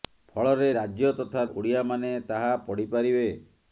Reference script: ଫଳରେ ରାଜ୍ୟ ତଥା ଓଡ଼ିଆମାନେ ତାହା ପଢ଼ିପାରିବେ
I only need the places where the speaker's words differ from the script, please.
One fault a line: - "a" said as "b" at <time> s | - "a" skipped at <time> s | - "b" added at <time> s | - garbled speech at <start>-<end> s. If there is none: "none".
none